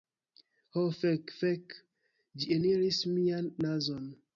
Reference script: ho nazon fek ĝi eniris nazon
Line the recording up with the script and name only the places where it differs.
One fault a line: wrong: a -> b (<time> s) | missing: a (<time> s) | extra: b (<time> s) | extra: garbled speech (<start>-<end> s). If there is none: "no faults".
wrong: nazon -> fek (1.0 s)
extra: mian (3.2 s)